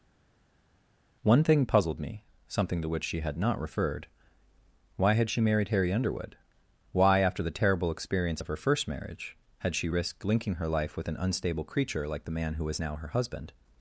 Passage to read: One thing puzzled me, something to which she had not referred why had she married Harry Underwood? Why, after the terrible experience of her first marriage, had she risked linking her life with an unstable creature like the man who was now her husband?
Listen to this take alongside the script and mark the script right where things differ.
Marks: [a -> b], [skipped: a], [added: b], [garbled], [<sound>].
One thing puzzled me, something to which she had not referred why had she married Harry Underwood? Why, after the terrible experience of her first marriage, had she risked linking her life with an unstable creature like the man who was now her husband?